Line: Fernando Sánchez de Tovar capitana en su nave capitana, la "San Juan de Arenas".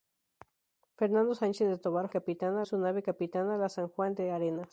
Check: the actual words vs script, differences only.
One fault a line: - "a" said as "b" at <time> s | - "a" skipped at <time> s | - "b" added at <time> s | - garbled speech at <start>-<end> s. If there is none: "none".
none